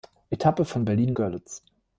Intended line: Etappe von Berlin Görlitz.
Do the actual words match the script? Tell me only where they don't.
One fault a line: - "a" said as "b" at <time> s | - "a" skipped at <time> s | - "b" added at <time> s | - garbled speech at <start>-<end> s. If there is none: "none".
none